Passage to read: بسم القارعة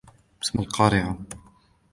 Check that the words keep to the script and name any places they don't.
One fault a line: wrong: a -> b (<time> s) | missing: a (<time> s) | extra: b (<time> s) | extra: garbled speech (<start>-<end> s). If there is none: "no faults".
no faults